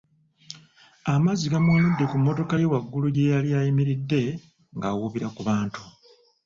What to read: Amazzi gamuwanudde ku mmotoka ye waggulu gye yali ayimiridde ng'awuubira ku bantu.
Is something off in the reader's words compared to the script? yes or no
no